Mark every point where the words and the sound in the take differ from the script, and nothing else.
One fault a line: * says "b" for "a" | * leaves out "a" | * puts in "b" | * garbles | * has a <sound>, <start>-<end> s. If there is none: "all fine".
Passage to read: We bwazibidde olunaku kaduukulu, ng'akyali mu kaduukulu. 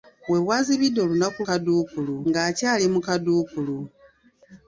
all fine